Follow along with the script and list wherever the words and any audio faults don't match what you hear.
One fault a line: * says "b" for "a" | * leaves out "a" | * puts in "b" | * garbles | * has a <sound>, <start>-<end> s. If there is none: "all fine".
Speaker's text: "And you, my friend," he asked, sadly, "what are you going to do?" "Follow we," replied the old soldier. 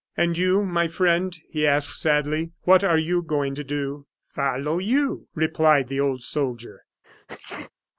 * says "you" for "we"
* has a sneeze, 7.0-7.7 s